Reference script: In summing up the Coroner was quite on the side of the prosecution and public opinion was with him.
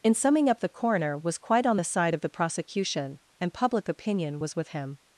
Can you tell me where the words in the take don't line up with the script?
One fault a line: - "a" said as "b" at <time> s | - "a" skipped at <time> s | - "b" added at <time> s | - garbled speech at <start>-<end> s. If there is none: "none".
none